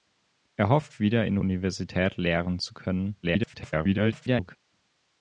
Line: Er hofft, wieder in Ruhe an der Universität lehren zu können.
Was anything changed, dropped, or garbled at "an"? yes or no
yes